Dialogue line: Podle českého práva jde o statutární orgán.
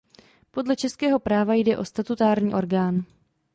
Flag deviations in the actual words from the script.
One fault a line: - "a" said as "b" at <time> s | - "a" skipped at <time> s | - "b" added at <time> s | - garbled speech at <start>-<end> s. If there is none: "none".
none